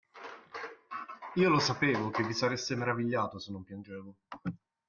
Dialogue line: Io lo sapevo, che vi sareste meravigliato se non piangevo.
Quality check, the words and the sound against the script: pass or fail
pass